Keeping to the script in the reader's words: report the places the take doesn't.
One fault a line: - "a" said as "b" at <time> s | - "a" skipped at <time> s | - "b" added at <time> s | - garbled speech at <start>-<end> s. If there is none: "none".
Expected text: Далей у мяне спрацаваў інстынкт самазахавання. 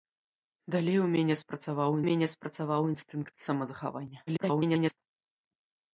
- "мяне спрацаваў" added at 2.1 s
- garbled speech at 4.3-5.0 s